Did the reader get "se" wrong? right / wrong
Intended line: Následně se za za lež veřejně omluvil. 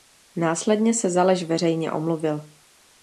right